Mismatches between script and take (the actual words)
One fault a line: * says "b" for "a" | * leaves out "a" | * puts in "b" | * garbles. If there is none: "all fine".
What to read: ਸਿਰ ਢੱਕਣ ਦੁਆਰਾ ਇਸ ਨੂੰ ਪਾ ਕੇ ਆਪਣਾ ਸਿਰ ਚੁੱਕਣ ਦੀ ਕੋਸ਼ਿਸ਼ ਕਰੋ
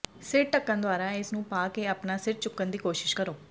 all fine